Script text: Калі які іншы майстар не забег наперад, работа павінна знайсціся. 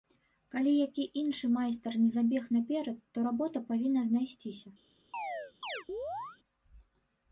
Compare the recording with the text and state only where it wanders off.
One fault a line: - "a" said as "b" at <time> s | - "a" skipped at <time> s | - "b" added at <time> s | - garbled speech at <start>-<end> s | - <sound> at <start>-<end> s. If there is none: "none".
- "то" added at 3.1 s
- chirp at 5.1-6.4 s